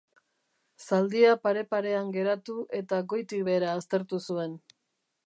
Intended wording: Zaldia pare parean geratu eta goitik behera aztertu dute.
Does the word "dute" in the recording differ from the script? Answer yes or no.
yes